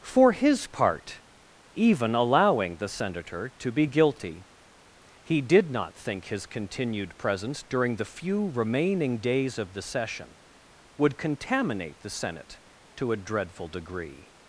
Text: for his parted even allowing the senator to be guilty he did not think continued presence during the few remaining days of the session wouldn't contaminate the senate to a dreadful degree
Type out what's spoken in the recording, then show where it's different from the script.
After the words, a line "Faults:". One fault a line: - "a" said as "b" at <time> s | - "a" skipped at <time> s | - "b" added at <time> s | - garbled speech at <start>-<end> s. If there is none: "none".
for his part even allowing the senator to be guilty he did not think his continued presence during the few remaining days of the session would contaminate the senate to a dreadful degree
Faults:
- "parted" said as "part" at 0.7 s
- "his" added at 6.3 s
- "wouldn't" said as "would" at 11.0 s